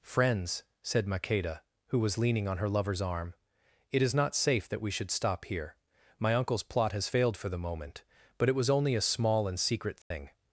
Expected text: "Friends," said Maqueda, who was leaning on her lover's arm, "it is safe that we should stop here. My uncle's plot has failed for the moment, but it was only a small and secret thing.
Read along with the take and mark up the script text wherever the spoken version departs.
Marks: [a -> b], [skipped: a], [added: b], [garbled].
"Friends," said Maqueda, who was leaning on her lover's arm, "it is [added: not] safe that we should stop here. My uncle's plot has failed for the moment, but it was only a small and secret thing.